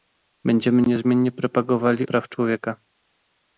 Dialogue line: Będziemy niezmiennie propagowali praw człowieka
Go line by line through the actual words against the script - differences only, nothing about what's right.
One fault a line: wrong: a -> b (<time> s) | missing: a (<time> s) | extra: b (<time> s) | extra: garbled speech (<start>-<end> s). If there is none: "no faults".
no faults